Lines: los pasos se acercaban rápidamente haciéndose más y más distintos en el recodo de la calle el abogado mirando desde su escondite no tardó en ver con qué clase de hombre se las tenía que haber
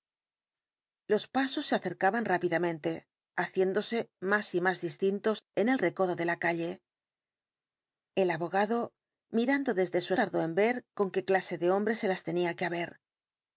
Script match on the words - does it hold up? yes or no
no